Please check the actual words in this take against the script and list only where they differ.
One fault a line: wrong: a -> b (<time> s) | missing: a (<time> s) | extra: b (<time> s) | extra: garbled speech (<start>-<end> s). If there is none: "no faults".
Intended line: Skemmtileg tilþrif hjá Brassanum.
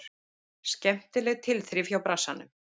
no faults